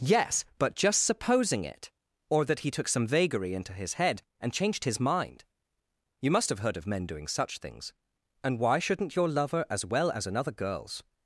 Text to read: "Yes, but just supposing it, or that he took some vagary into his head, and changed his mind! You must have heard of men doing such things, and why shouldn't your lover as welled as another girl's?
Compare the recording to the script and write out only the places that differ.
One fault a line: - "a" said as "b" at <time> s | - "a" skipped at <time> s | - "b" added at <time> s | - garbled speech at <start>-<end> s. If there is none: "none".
- "welled" said as "well" at 9.8 s